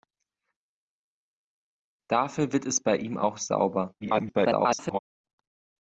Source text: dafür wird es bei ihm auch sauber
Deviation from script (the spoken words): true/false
true